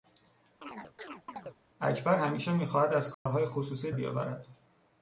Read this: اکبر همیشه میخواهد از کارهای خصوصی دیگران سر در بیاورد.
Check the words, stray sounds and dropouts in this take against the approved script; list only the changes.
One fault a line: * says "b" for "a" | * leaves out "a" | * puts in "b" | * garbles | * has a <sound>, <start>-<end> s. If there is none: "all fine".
* has a chirp, 0.6-1.6 s
* has a dropout, 3.1-3.3 s
* leaves out "دیگران سر در"